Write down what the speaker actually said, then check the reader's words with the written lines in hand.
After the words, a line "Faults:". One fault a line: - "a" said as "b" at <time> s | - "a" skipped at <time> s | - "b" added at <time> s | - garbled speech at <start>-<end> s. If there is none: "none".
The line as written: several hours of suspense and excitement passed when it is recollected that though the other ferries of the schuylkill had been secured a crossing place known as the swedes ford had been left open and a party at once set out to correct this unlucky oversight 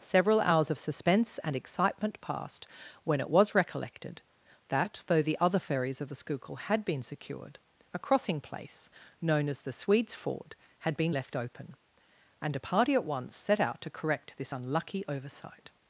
several hours of suspense and excitement passed when it was recollected that though the other ferries of the schuylkill had been secured a crossing place known as the swedes ford had been left open and a party at once set out to correct this unlucky oversight
Faults:
- "is" said as "was" at 3.3 s